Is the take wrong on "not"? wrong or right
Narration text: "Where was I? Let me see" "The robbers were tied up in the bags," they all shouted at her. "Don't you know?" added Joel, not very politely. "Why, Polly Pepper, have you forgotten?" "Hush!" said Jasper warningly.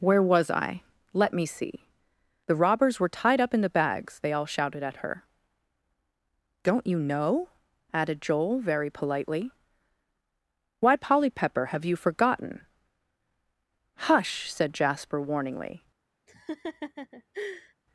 wrong